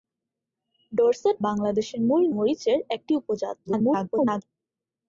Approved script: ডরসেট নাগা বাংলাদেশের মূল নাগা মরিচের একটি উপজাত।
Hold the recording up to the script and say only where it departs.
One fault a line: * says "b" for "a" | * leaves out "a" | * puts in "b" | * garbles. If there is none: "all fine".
* leaves out "নাগা"
* leaves out "নাগা"
* garbles